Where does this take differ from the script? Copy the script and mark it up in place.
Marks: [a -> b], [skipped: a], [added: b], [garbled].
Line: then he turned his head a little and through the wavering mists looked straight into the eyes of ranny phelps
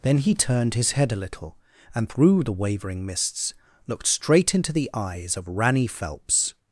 then he turned his head a little and through the wavering mists looked straight into the eyes of ranny phelps